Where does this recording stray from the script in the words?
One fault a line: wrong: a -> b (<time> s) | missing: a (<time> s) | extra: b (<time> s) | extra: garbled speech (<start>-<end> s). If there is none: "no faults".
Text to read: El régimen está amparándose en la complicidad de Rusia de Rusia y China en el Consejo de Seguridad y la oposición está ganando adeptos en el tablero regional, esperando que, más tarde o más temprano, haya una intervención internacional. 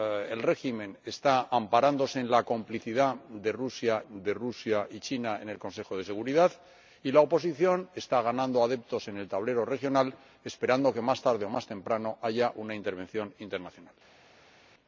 no faults